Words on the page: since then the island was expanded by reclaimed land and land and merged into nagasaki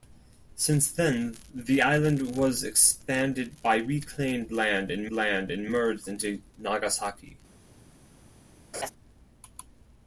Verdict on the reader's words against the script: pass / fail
pass